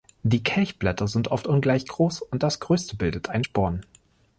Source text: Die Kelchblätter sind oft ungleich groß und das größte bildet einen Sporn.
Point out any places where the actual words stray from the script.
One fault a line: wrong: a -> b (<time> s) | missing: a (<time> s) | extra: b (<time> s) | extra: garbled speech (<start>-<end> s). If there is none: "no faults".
no faults